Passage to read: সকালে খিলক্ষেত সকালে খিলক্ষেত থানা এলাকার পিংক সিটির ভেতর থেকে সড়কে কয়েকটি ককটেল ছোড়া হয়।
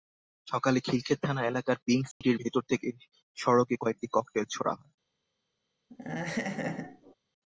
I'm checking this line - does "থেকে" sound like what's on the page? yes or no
yes